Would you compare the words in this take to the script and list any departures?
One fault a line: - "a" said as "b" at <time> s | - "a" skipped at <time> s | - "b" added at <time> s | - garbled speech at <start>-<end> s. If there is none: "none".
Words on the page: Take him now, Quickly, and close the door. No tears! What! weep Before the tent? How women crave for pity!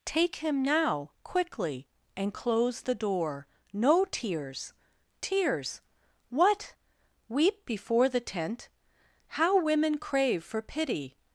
- "tears" added at 5.2 s